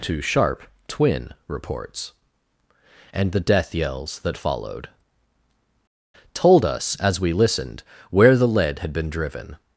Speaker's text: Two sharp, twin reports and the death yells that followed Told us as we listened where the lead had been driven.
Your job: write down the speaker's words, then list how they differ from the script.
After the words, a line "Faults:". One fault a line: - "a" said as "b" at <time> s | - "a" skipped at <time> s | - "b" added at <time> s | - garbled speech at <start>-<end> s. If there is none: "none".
Two sharp, twin reports and the death yells that followed Told us as we listened where the lead had been driven.
Faults:
none